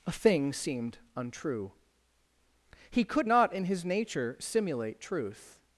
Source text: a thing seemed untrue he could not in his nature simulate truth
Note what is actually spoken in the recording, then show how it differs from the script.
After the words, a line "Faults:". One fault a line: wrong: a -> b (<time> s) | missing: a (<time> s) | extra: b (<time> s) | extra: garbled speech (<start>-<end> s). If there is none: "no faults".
a thing seemed untrue he could not in his nature simulate truth
Faults:
no faults